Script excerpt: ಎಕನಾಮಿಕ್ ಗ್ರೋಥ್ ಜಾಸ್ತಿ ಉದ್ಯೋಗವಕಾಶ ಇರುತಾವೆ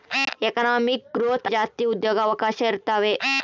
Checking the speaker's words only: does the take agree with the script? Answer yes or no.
yes